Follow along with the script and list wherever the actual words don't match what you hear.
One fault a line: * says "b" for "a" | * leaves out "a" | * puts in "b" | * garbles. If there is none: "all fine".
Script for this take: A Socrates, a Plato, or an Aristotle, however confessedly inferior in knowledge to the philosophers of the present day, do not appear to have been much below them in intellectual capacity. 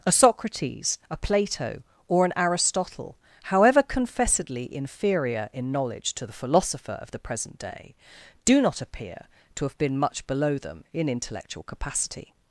* says "philosopher" for "philosophers"